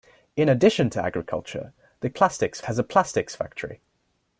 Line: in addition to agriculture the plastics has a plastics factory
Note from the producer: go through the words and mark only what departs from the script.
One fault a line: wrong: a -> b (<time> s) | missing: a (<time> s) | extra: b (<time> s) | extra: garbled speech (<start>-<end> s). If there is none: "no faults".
no faults